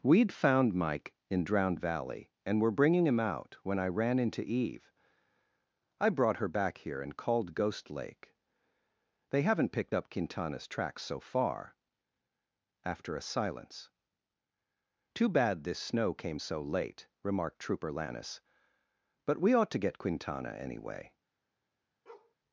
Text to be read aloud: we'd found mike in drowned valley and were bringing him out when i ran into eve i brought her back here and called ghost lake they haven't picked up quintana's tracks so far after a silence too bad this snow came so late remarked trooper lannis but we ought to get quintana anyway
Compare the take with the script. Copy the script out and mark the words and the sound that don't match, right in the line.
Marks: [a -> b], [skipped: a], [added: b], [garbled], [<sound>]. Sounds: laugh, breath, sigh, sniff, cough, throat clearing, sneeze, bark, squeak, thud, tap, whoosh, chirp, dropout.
we'd found mike in drowned valley and were bringing him out when i ran into eve i brought her back here and called ghost lake they haven't picked up quintana's tracks so far after a silence too bad this snow came so late remarked trooper lannis but we ought to get quintana anyway [bark]